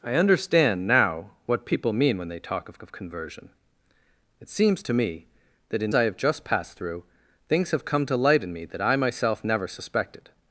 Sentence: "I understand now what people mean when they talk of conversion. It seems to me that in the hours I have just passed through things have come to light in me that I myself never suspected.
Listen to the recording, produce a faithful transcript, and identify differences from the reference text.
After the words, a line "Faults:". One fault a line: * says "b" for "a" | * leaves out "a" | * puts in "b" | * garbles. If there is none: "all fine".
"I understand now what people mean when they talk of of conversion. It seems to me that in I have just passed through things have come to light in me that I myself never suspected.
Faults:
* puts in "of"
* leaves out "the hours"